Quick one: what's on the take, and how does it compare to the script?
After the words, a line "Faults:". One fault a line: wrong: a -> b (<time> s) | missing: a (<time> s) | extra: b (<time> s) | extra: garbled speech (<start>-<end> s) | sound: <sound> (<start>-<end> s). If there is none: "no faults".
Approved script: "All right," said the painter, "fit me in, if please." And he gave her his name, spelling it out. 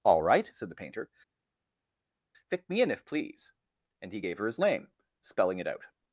"All right," said the painter, "fit me in, if please." And he gave her his name, spelling it out.
Faults:
no faults